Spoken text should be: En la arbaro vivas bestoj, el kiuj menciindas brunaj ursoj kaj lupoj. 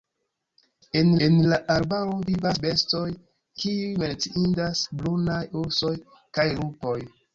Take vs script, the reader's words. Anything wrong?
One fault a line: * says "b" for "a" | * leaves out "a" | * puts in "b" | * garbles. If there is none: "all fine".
* puts in "en"
* leaves out "el"